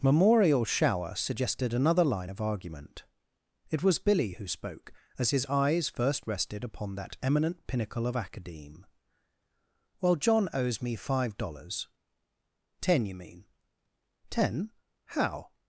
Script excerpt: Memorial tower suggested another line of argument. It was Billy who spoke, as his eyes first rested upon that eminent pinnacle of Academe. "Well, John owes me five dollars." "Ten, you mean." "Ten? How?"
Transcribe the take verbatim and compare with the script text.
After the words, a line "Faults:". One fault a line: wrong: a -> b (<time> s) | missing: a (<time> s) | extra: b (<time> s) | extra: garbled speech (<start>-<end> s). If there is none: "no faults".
Memorial shower suggested another line of argument. It was Billy who spoke, as his eyes first rested upon that eminent pinnacle of Academe. "Well, John owes me five dollars." "Ten, you mean." "Ten? How?"
Faults:
wrong: tower -> shower (0.7 s)